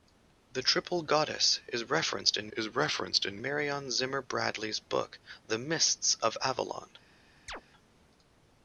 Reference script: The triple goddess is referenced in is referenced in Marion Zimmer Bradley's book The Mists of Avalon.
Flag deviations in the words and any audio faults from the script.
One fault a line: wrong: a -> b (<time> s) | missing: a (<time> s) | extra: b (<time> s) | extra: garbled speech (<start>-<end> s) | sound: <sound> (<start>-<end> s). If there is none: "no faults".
sound: chirp (7.5-7.6 s)